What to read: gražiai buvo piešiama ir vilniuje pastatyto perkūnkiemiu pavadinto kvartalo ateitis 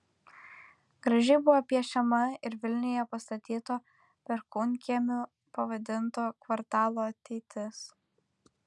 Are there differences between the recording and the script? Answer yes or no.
no